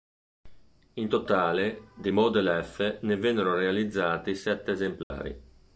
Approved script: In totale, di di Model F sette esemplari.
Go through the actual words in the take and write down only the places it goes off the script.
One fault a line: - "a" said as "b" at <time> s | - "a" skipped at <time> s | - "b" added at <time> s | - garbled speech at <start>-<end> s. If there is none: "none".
- "di" skipped at 2.1 s
- "ne vennero realizzati" added at 3.0 s